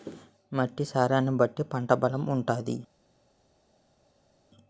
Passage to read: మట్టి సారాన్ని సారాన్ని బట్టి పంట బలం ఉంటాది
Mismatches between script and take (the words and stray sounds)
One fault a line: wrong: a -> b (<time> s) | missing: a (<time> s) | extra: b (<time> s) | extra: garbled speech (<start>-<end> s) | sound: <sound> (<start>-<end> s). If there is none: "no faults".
missing: సారాన్ని (1.3 s)